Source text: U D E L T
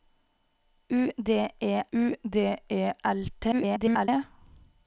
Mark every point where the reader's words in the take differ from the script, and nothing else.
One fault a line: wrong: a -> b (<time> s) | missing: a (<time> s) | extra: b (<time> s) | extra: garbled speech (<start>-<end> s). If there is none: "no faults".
extra: u D E (1.9 s)
extra: garbled speech (3.5-4.1 s)